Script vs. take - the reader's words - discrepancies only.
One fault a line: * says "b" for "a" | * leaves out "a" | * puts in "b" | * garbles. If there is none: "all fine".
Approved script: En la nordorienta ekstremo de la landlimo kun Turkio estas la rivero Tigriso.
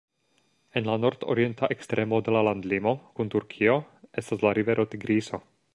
all fine